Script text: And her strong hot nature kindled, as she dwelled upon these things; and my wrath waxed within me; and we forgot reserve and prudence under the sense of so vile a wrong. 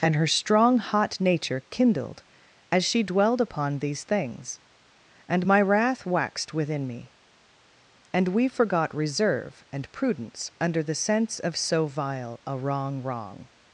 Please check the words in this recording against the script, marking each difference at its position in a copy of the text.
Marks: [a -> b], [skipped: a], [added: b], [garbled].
And her strong hot nature kindled, as she dwelled upon these things; and my wrath waxed within me; and we forgot reserve and prudence under the sense of so vile a wrong. [added: wrong]